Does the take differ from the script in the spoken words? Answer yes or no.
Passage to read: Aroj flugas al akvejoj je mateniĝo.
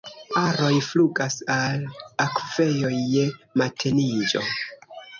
no